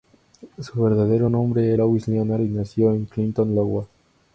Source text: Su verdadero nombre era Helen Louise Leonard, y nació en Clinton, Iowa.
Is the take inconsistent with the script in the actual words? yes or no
yes